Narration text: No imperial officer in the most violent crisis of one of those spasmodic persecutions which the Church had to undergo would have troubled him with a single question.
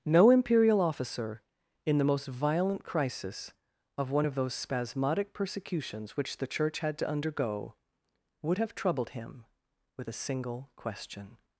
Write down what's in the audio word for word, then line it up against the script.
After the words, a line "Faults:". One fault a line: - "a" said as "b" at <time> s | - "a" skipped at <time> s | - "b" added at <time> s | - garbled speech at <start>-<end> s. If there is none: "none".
No imperial officer in the most violent crisis of one of those spasmodic persecutions which the Church had to undergo would have troubled him with a single question.
Faults:
none